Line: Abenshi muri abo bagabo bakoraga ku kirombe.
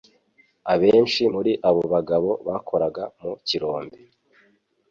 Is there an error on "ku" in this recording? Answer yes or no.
yes